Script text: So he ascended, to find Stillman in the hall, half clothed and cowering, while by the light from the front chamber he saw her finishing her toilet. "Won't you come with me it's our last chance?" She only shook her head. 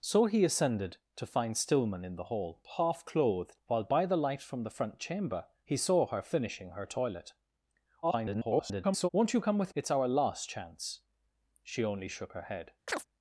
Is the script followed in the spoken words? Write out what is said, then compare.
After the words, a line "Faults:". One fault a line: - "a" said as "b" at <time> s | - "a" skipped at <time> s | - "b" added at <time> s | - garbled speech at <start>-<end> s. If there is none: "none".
So he ascended, to find Stillman in the hall, half clothed while by the light from the front chamber he saw her finishing her toilet. [garbled] "Won't you come with it's our last chance?" She only shook her head.
Faults:
- "and cowering" skipped at 3.6 s
- garbled speech at 8.0-9.1 s
- "me" skipped at 9.7 s